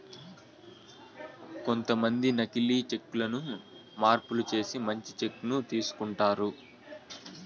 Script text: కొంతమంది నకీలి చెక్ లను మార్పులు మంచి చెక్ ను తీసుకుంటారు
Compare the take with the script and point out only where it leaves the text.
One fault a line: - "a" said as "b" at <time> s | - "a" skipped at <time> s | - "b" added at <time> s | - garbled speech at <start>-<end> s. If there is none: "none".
- "చేసి" added at 4.5 s